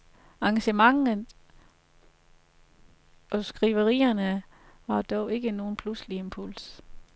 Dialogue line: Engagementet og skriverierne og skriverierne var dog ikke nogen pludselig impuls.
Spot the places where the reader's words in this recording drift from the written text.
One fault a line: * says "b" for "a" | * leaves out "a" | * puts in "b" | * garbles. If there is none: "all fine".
* leaves out "og skriverierne"